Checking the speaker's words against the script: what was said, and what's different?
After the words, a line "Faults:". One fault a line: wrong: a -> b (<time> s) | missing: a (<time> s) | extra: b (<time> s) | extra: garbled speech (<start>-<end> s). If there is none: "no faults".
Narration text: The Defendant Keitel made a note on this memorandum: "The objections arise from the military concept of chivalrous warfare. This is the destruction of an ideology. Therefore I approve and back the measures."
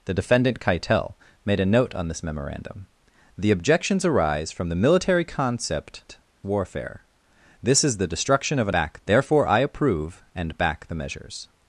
The Defendant Keitel made a note on this memorandum: "The objections arise from the military concept warfare. This is the destruction of an back. Therefore I approve and back the measures."
Faults:
missing: of chivalrous (6.2 s)
wrong: ideology -> back (8.7 s)